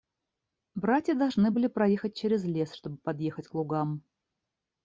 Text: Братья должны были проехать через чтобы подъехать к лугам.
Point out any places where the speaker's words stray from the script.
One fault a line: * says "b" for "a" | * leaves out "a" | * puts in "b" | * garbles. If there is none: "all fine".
* puts in "лес"